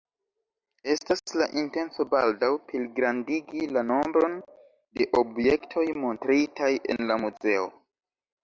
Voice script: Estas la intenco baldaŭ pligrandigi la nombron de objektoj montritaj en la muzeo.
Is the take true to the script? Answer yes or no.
yes